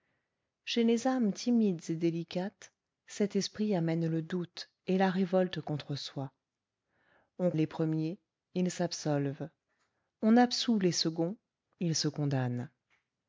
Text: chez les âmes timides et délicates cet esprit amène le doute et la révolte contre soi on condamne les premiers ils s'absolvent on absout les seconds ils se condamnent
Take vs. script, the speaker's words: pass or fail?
fail